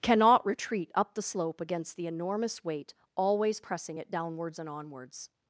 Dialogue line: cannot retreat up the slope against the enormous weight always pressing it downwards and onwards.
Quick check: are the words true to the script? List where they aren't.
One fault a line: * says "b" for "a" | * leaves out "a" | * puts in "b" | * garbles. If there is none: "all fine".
all fine